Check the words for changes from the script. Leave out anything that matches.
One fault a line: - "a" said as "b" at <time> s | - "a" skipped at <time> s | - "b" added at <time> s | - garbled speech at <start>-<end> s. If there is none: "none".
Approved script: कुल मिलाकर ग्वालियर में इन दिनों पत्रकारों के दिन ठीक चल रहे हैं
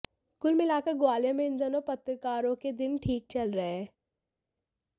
none